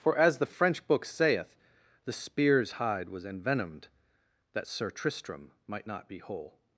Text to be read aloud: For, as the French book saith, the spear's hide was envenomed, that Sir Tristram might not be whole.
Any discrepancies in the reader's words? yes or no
no